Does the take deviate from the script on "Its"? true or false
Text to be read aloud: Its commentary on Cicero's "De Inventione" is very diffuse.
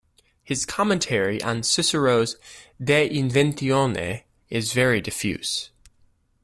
true